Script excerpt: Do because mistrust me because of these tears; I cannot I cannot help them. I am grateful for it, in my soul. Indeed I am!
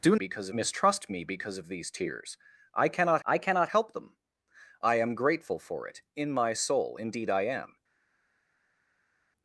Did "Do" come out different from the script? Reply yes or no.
no